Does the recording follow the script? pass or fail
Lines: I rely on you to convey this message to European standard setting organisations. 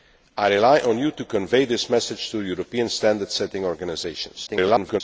fail